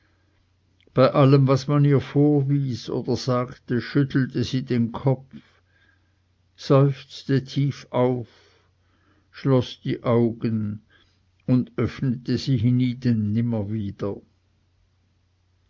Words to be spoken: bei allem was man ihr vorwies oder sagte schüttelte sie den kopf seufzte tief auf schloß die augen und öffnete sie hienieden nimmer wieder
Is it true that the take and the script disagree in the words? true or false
false